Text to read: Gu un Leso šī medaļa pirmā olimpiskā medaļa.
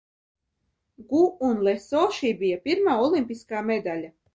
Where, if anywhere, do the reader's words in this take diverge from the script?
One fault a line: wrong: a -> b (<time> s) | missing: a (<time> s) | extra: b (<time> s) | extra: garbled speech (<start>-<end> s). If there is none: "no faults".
wrong: medaļa -> bija (2.4 s)